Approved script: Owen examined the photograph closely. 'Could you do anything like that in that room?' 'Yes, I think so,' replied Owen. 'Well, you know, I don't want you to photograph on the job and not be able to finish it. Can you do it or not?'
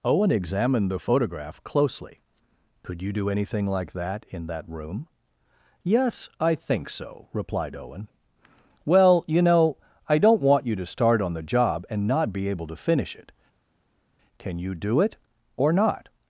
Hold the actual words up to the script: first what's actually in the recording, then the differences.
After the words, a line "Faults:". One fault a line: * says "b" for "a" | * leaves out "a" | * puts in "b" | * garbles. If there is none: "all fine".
Owen examined the photograph closely. 'Could you do anything like that in that room?' 'Yes, I think so,' replied Owen. 'Well, you know, I don't want you to start on the job and not be able to finish it. Can you do it or not?'
Faults:
* says "start" for "photograph"